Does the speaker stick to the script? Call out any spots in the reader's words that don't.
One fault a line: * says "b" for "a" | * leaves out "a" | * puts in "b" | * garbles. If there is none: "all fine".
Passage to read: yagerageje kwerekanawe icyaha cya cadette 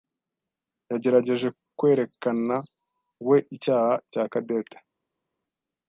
all fine